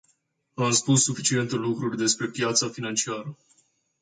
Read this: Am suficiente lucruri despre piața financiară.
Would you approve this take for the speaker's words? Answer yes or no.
no